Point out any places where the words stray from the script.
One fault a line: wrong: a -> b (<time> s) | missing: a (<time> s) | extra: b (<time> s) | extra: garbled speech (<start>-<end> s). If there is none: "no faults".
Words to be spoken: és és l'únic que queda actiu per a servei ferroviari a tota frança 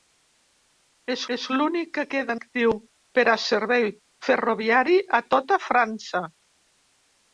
no faults